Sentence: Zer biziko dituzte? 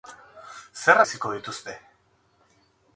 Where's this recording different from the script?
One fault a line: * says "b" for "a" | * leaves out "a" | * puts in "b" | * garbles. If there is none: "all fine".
all fine